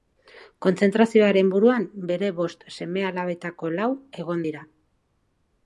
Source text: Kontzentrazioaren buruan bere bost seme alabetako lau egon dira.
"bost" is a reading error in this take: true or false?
false